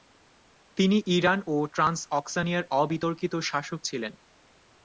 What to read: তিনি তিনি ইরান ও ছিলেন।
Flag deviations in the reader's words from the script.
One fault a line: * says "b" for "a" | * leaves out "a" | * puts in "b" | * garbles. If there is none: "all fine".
* leaves out "তিনি"
* puts in "ট্রান্সঅক্সানিয়ার অবিতর্কিত শাসক"